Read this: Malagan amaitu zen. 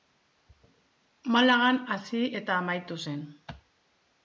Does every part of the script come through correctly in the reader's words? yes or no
no